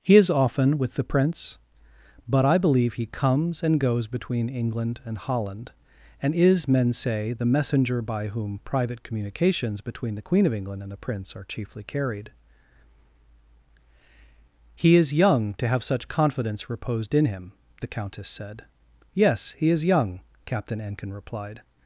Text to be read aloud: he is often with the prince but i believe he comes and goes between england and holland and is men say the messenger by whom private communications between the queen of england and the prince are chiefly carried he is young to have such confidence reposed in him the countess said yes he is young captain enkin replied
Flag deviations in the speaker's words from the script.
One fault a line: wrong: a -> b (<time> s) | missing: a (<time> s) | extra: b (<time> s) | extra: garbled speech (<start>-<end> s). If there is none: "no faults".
no faults